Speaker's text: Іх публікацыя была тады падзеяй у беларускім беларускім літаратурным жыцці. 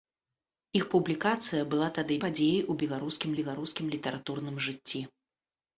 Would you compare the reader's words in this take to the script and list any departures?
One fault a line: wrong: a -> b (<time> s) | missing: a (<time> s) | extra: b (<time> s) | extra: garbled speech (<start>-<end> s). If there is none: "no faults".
no faults